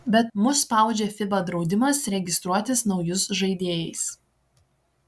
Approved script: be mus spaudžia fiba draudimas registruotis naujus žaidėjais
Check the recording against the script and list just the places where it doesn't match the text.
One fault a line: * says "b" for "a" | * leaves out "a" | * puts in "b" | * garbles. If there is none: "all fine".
all fine